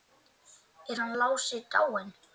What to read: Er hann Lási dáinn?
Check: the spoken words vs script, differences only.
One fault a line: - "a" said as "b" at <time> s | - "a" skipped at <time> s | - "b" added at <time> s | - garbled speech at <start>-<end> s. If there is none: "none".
none